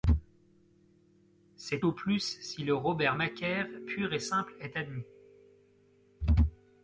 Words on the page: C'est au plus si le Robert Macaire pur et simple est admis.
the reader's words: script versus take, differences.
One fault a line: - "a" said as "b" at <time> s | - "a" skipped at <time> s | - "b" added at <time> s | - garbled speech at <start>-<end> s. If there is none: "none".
none